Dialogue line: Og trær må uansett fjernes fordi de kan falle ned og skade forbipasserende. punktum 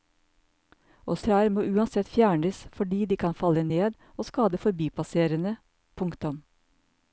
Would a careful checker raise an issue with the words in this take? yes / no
no